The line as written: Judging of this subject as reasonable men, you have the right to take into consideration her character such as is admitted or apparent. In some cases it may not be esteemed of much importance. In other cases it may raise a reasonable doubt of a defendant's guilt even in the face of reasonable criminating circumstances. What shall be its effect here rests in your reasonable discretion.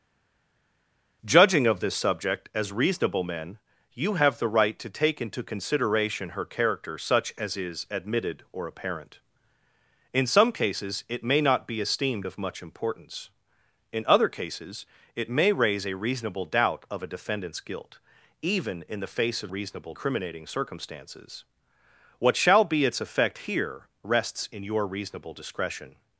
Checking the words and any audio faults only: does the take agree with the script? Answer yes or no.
yes